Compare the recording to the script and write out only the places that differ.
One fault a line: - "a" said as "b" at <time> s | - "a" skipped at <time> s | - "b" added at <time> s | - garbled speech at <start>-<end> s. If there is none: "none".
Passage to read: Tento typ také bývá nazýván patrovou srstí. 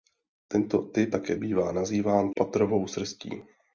none